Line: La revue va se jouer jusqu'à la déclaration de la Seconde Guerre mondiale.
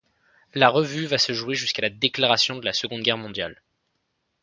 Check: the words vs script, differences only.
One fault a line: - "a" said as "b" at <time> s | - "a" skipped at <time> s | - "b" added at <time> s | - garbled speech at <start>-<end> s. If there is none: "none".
none